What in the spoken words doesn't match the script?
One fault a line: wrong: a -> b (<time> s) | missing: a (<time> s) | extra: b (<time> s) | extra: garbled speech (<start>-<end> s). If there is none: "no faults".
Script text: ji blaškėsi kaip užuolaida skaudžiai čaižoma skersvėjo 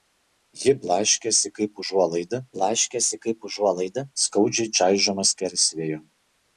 extra: blaškėsi kaip užuolaida (2.6 s)